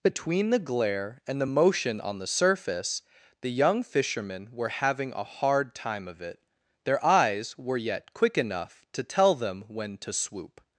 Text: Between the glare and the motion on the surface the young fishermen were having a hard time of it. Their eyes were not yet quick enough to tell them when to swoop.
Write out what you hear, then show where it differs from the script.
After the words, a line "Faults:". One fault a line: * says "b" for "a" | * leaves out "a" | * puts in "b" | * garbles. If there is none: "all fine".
Between the glare and the motion on the surface the young fishermen were having a hard time of it. Their eyes were yet quick enough to tell them when to swoop.
Faults:
* leaves out "not"